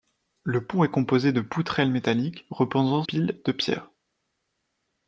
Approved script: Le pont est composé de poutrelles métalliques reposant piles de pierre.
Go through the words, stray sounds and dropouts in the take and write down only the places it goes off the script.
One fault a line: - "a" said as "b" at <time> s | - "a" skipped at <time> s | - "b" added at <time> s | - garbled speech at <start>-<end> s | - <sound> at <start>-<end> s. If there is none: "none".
none